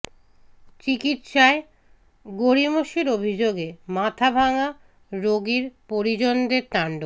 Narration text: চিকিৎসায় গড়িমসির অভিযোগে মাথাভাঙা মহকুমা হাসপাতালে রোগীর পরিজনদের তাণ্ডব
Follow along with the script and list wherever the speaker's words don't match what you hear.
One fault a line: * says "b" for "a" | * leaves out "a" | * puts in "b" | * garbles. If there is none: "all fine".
* leaves out "মহকুমা হাসপাতালে"